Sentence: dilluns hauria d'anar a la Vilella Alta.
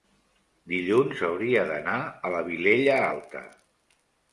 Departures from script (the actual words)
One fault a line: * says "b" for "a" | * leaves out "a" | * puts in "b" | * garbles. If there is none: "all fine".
all fine